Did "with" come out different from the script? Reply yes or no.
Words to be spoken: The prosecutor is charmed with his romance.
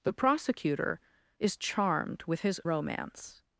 no